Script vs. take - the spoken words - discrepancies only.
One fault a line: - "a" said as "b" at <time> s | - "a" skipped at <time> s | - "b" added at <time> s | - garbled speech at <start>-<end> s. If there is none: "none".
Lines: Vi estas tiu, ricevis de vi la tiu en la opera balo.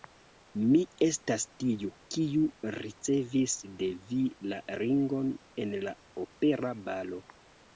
- "Vi" said as "Mi" at 0.7 s
- "kiu" added at 2.1 s
- "tiu" said as "ringon" at 4.8 s